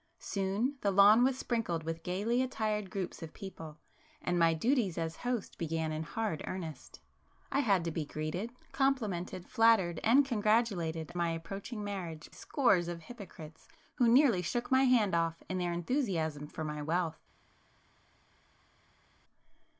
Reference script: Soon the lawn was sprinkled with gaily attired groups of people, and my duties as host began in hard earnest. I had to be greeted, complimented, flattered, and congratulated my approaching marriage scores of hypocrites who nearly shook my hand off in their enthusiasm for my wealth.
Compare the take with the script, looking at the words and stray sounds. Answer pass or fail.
pass